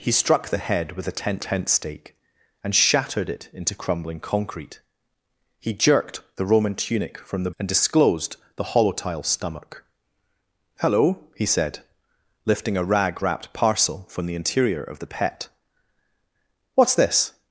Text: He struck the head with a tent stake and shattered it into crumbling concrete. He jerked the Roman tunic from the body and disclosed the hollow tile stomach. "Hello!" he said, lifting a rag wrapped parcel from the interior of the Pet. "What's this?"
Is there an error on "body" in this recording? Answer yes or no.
yes